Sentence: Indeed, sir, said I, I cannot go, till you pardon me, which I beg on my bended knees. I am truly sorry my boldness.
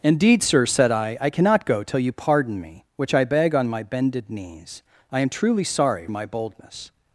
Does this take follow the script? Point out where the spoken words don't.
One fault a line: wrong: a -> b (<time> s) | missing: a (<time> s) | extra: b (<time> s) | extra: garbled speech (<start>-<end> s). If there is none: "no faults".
no faults